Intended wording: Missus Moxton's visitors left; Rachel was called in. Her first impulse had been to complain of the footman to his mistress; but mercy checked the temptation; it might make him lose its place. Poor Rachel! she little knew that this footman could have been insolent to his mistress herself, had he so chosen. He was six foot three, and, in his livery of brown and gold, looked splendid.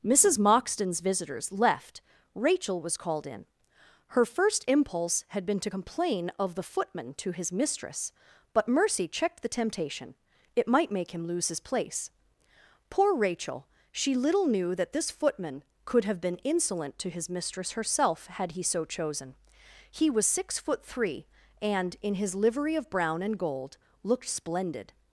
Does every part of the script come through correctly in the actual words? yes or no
no